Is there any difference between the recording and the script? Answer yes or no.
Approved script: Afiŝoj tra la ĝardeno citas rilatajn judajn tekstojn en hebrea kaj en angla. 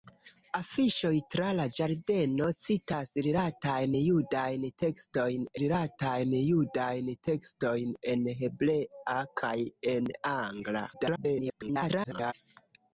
yes